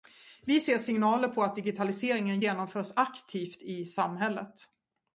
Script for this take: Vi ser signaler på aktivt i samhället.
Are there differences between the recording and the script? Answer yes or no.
yes